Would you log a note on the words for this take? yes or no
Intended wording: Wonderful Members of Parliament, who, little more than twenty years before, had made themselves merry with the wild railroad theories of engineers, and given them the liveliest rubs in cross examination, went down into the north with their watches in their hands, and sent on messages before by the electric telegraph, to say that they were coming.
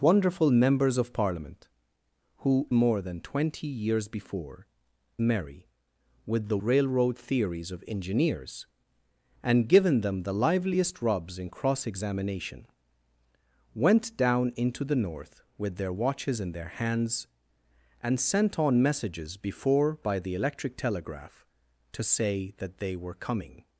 yes